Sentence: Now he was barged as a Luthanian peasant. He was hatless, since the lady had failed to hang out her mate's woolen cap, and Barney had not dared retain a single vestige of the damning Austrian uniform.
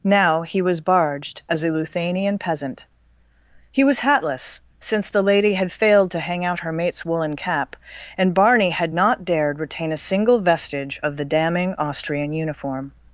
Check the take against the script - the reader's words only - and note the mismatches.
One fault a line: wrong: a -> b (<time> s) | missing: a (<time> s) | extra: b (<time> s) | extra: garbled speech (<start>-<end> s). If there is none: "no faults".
no faults